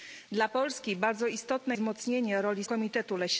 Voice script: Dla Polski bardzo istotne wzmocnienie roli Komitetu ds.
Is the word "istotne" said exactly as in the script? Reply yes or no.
yes